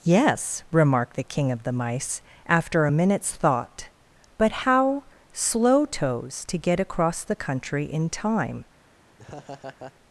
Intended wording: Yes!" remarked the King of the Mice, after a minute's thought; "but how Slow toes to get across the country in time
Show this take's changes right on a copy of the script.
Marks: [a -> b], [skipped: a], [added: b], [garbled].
Yes!" remarked the King of the Mice, after a minute's thought; "but how Slow toes to get across the country in time